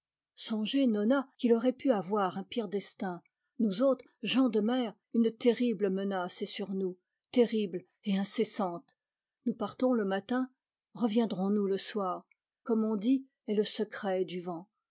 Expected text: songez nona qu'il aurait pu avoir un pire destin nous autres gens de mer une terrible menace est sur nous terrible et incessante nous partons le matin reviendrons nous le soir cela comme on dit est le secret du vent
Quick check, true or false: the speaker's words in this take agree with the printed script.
false